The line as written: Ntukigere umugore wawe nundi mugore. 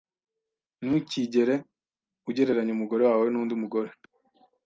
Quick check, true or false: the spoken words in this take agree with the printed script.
false